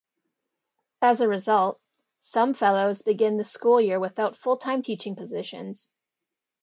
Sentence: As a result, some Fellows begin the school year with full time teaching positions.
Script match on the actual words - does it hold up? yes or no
no